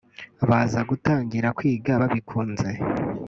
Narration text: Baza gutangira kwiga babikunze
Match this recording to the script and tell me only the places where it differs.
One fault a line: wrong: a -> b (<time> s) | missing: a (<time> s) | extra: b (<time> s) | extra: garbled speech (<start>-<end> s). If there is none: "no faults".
no faults